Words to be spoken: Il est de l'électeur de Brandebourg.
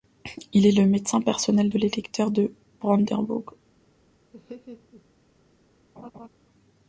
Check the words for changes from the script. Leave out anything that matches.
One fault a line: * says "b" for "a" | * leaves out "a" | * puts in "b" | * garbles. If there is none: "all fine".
* puts in "le médecin personnel"